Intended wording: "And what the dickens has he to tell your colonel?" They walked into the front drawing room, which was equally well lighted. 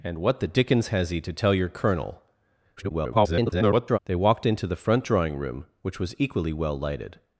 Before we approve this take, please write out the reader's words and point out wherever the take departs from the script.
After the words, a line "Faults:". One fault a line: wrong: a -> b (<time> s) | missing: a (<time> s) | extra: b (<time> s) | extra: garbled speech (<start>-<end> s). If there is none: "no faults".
"And what the dickens has he to tell your colonel?" [garbled] They walked into the front drawing room, which was equally well lighted.
Faults:
extra: garbled speech (2.8-4.0 s)